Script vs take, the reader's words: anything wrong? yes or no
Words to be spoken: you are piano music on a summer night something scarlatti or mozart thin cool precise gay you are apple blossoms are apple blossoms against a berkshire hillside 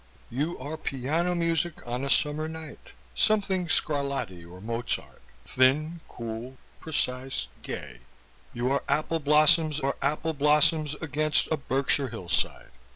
no